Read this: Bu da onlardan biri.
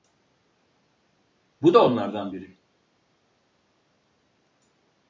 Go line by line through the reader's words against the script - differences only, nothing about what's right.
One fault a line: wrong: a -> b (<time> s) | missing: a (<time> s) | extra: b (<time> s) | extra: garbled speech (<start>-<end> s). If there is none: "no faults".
no faults